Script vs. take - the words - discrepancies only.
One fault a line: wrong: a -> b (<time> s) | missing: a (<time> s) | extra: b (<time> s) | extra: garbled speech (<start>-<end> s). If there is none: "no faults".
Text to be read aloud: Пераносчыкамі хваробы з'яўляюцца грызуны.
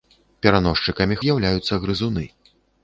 missing: хваробы (1.2 s)